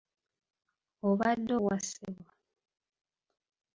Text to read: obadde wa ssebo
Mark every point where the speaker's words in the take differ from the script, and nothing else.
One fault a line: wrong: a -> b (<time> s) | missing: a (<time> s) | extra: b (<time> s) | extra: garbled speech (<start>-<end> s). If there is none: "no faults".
no faults